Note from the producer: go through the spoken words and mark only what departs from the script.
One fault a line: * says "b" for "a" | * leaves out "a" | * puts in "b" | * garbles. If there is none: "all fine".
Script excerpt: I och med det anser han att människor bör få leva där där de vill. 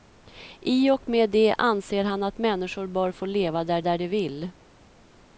all fine